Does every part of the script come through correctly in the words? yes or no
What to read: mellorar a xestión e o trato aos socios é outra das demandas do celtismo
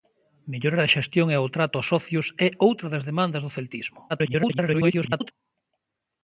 no